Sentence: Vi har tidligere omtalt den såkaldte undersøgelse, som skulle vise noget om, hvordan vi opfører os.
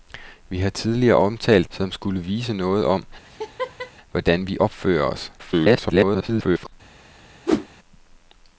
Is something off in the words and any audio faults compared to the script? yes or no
yes